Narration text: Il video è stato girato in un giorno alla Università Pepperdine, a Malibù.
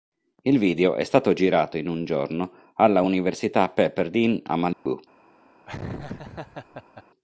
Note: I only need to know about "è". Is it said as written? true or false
true